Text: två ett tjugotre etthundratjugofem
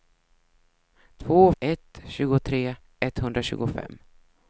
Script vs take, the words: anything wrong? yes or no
no